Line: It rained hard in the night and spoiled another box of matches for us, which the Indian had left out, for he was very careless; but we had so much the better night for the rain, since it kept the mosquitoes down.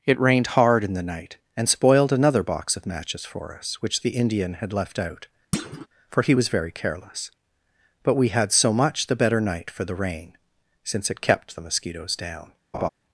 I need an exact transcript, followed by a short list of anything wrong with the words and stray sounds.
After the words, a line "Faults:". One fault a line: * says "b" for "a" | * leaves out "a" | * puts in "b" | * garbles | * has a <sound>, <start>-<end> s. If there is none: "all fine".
It rained hard in the night and spoiled another box of matches for us, which the Indian had left out, for he was very careless; but we had so much the better night for the rain, since it kept the mosquitoes down.
Faults:
* has a thud, 5.5-5.9 s
* has a laugh, 12.7-12.9 s